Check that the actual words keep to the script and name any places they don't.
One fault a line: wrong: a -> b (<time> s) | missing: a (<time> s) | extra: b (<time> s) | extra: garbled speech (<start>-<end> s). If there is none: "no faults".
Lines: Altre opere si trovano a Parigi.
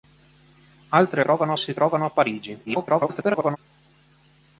wrong: opere -> trovano (1.2 s)
extra: garbled speech (2.7-3.6 s)